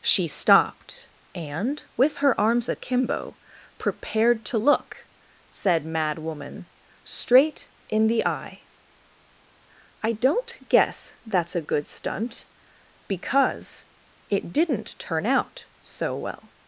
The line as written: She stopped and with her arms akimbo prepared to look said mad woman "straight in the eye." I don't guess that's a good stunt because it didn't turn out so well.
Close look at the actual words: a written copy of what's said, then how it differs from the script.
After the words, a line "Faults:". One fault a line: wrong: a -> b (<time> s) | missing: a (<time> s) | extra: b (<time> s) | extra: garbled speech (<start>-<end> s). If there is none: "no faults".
She stopped and with her arms akimbo prepared to look said mad woman "straight in the eye." I don't guess that's a good stunt because it didn't turn out so well.
Faults:
no faults